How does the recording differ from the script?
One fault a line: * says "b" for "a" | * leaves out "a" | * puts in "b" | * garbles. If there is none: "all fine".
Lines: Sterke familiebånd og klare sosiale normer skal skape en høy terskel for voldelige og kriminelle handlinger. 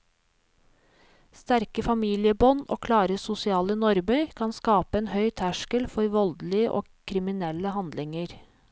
* says "kan" for "skal"